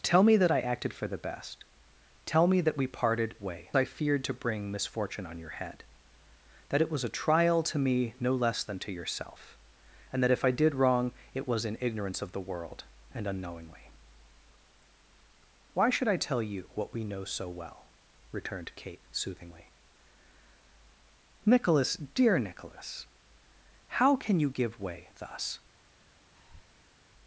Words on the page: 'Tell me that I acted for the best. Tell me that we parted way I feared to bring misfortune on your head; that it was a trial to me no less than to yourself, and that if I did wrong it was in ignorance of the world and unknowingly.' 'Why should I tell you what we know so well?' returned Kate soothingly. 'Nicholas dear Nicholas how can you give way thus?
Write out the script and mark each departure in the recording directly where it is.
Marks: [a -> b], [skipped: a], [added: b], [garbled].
'Tell me that I acted for the best. Tell me that we parted way I feared to bring misfortune on your head; that it was a trial to me no less than to yourself, and that if I did wrong it was in ignorance of the world and unknowingly.' 'Why should I tell you what we know so well?' returned Kate soothingly. 'Nicholas dear Nicholas how can you give way thus?